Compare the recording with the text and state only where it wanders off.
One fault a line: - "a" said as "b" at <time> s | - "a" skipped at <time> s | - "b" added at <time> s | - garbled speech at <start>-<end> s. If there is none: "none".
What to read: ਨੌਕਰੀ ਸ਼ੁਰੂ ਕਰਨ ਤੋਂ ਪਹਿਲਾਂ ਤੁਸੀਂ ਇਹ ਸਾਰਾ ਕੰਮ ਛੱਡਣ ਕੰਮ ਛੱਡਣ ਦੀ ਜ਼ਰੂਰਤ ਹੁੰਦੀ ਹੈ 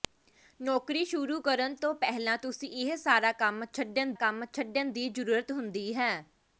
none